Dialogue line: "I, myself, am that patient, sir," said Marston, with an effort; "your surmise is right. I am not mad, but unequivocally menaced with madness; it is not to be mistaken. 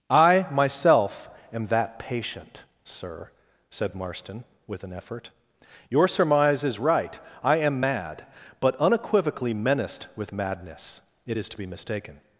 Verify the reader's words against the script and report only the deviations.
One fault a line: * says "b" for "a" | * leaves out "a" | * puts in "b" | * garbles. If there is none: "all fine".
* leaves out "not"
* leaves out "not"